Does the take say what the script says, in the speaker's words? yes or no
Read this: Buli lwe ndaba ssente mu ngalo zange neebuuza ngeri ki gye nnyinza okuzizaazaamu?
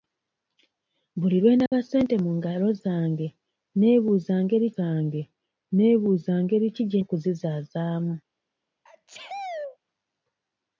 no